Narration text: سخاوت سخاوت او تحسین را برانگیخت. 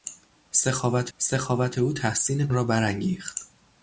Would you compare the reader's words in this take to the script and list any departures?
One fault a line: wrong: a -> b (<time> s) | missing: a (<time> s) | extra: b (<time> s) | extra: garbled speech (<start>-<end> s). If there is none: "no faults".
no faults